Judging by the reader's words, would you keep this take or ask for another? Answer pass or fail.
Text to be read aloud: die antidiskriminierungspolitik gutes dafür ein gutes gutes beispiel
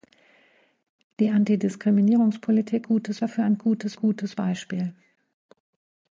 pass